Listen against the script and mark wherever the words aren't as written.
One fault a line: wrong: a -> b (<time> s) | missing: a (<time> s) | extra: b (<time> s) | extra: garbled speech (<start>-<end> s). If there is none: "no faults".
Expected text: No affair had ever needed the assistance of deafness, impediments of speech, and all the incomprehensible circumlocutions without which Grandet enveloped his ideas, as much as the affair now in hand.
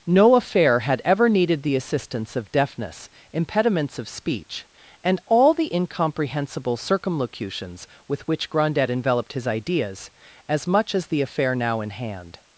wrong: without -> with (8.1 s)